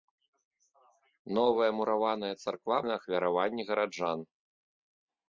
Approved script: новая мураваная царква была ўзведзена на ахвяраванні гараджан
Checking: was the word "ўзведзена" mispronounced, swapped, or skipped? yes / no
yes